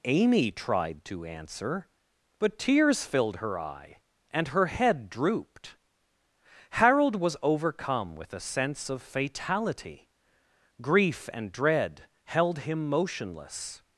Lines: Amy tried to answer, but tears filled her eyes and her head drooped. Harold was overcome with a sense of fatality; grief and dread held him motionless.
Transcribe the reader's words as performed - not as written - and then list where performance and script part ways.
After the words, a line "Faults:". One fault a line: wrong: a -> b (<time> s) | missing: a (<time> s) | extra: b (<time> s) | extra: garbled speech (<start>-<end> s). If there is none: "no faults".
Amy tried to answer, but tears filled her eye and her head drooped. Harold was overcome with a sense of fatality; grief and dread held him motionless.
Faults:
wrong: eyes -> eye (3.6 s)